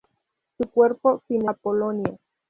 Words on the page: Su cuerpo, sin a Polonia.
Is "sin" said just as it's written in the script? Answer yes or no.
yes